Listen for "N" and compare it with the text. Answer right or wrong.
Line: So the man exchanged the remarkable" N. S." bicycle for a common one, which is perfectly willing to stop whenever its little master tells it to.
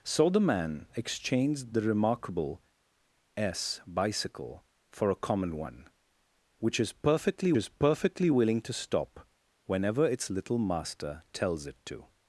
wrong